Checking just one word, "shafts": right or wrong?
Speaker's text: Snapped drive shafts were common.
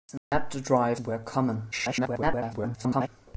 wrong